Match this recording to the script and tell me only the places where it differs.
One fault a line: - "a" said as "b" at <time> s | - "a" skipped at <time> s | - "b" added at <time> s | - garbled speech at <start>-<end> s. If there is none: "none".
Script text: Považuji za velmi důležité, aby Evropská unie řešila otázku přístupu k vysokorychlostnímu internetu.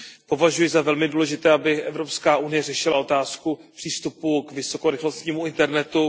none